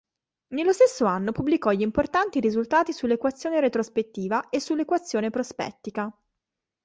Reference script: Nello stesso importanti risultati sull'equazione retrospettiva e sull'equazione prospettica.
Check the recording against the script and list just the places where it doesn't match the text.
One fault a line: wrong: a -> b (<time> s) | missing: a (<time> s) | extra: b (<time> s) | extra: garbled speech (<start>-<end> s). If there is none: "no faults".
extra: anno pubblicò gli (1.0 s)